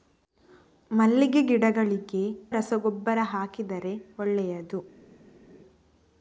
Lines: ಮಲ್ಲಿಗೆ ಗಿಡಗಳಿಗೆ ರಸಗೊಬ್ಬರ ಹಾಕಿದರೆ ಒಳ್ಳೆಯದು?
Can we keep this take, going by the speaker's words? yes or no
yes